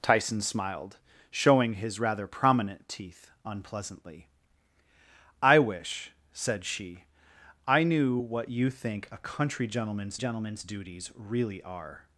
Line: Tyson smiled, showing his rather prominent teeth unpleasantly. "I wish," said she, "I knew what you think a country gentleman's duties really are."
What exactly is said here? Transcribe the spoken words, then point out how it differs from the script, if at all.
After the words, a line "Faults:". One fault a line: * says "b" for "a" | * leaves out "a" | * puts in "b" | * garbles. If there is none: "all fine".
Tyson smiled, showing his rather prominent teeth unpleasantly. "I wish," said she, "I knew what you think a country gentleman's gentleman's duties really are."
Faults:
* puts in "gentleman's"